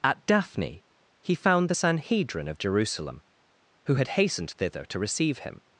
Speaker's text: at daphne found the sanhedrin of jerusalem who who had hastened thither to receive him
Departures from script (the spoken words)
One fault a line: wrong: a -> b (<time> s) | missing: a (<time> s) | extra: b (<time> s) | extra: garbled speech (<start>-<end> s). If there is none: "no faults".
extra: he (1.2 s)
missing: who (4.0 s)